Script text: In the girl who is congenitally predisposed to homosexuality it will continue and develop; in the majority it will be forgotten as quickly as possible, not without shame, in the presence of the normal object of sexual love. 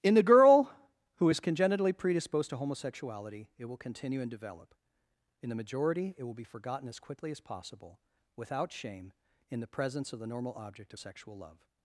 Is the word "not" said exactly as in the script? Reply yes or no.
no